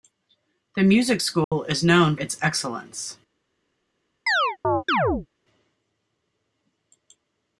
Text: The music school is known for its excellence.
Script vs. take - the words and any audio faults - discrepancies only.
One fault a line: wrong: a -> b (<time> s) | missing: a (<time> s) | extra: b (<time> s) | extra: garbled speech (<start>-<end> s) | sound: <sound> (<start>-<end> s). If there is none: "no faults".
sound: dropout (1.4-1.5 s)
missing: for (2.1 s)
sound: chirp (4.3-5.3 s)